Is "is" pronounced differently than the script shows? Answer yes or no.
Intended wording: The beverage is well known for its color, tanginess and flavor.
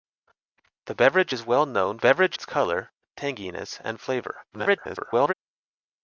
no